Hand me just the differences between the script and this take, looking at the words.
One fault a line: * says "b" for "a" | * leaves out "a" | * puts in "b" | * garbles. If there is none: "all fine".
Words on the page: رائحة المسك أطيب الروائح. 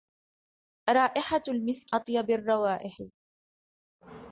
all fine